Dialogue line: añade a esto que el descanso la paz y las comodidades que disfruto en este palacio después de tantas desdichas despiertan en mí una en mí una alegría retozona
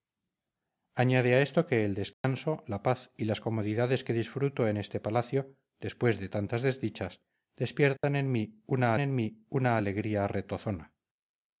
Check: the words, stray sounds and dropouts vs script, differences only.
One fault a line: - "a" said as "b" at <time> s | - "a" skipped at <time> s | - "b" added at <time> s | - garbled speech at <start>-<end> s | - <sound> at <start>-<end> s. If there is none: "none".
- dropout at 2.1-2.2 s
- dropout at 8.0-8.0 s